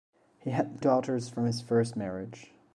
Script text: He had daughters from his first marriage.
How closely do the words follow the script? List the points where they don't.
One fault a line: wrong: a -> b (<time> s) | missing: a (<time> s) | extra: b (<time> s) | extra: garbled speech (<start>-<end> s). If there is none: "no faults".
no faults